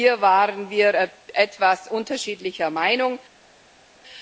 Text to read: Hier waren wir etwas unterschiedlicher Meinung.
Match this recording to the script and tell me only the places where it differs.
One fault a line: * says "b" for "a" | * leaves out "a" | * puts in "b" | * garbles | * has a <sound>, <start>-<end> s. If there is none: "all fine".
all fine